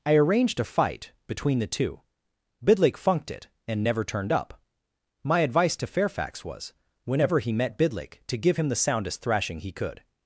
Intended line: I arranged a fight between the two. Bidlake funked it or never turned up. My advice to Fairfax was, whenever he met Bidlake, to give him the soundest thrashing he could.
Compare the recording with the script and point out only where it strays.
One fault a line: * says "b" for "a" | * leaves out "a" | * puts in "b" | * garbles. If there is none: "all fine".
* says "and" for "or"